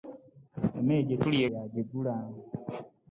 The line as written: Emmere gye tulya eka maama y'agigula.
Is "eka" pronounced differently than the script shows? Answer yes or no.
yes